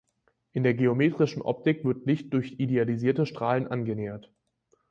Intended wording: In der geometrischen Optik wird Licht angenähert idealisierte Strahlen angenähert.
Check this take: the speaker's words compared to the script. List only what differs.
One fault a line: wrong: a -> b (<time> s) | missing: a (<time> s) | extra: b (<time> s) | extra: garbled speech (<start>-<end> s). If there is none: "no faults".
wrong: angenähert -> durch (2.3 s)